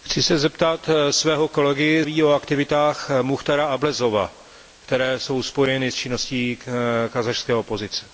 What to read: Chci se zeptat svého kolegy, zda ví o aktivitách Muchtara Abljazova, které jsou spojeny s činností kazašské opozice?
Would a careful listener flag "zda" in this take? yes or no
yes